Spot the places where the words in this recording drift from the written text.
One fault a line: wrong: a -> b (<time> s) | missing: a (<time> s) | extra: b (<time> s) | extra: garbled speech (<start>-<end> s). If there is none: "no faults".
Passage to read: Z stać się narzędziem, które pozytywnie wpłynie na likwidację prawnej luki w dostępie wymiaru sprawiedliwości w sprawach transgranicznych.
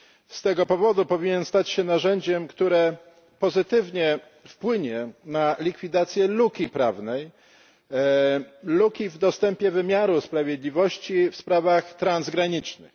extra: tego powodu powinien (0.4 s)
extra: luki (6.3 s)